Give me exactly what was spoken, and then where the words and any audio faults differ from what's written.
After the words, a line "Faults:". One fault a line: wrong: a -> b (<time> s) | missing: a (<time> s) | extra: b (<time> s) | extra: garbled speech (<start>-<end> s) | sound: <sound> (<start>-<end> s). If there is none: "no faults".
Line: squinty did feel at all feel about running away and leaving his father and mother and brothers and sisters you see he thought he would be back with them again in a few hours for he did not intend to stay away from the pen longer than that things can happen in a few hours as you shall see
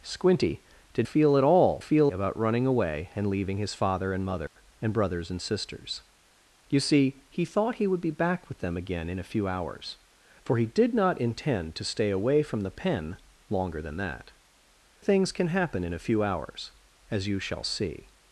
squinty did feel at all feel about running away and leaving his father and mother and brothers and sisters you see he thought he would be back with them again in a few hours for he did not intend to stay away from the pen longer than that things can happen in a few hours as you shall see
Faults:
sound: dropout (4.5-4.6 s)